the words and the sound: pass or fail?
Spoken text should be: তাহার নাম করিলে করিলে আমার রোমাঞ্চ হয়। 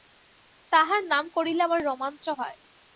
fail